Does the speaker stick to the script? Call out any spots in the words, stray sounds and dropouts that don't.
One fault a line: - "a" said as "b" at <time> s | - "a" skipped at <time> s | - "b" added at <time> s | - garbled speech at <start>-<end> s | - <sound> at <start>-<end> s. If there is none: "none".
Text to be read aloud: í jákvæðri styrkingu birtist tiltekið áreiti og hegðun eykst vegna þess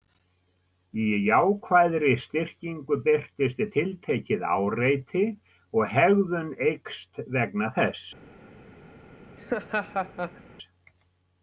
- laugh at 9.4-10.4 s